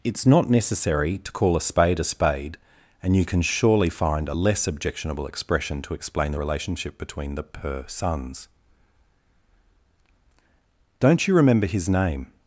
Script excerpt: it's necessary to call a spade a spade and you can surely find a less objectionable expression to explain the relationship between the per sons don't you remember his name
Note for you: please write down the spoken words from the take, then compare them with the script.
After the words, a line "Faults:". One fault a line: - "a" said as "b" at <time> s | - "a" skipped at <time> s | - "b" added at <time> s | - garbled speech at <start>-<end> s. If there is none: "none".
it's not necessary to call a spade a spade and you can surely find a less objectionable expression to explain the relationship between the per sons don't you remember his name
Faults:
- "not" added at 0.2 s